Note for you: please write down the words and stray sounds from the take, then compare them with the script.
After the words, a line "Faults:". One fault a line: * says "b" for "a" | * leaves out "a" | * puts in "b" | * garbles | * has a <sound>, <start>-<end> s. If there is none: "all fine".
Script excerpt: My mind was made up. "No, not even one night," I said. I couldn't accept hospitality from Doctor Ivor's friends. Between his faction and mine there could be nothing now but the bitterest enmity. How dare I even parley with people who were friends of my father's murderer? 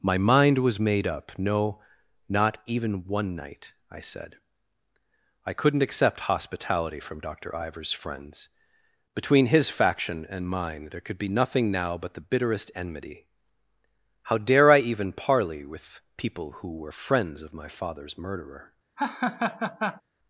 My mind was made up. "No, not even one night," I said. I couldn't accept hospitality from Doctor Ivor's friends. Between his faction and mine there could be nothing now but the bitterest enmity. How dare I even parley with people who were friends of my father's murderer?
Faults:
* has a laugh, 19.0-20.0 s